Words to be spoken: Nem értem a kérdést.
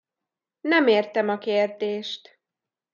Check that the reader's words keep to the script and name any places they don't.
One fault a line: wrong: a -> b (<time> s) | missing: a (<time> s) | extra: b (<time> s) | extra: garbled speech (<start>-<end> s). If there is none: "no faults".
no faults